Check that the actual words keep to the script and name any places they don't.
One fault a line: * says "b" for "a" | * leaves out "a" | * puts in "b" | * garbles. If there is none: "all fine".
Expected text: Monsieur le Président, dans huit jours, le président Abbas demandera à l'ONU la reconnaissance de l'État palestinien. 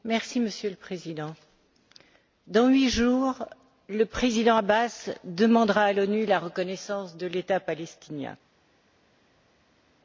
all fine